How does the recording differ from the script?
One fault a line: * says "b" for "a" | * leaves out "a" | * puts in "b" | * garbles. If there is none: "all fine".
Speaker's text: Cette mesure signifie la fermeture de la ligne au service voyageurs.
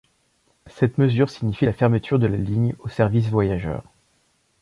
all fine